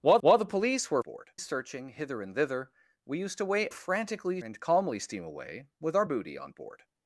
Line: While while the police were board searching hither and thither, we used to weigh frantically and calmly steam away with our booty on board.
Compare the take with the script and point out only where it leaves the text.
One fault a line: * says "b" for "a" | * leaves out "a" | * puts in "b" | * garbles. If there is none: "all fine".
all fine